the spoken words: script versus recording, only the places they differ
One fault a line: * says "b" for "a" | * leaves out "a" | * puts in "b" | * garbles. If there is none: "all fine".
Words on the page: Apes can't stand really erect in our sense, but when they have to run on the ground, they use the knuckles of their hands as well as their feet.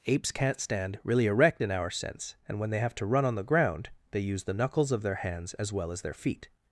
* says "and" for "but"